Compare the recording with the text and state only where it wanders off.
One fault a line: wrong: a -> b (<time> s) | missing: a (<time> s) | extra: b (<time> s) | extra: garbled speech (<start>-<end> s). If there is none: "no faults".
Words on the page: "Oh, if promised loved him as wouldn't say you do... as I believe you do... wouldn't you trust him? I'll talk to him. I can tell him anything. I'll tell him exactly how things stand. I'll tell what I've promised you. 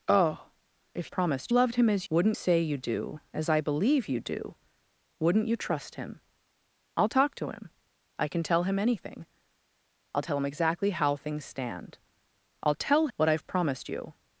no faults